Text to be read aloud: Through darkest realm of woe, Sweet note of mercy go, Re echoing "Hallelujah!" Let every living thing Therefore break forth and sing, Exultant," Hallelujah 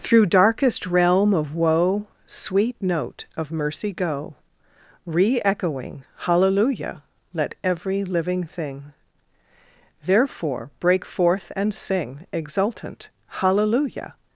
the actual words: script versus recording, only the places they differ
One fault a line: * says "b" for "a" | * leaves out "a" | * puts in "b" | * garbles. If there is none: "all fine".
all fine